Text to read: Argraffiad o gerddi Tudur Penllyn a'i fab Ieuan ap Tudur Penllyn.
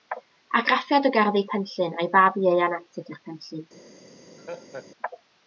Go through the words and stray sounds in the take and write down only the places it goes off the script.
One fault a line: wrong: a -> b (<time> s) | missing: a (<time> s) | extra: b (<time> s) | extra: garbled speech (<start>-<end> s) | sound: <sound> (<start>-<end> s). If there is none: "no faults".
missing: Tudur (1.4 s)
sound: laugh (4.4-4.9 s)